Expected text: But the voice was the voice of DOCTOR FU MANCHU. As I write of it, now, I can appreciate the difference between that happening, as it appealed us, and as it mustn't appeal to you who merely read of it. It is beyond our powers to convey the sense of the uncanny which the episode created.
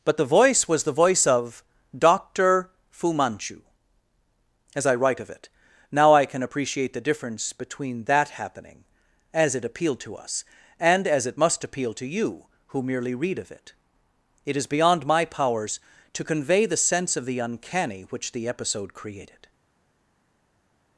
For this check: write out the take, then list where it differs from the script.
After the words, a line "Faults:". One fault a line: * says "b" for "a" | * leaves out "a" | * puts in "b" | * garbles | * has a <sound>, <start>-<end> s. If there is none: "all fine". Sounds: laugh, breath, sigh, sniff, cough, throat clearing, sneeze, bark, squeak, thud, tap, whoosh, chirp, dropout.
But the voice was the voice of DOCTOR FU MANCHU. As I write of it, now, I can appreciate the difference between that happening, as it appealed to us, and as it must appeal to you who merely read of it. It is beyond my powers to convey the sense of the uncanny which the episode created.
Faults:
* puts in "to"
* says "must" for "mustn't"
* says "my" for "our"